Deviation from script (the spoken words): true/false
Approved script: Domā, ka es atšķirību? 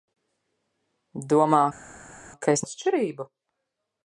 false